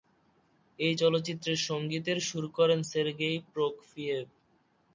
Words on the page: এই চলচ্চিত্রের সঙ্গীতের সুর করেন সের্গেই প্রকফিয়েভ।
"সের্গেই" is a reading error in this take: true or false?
false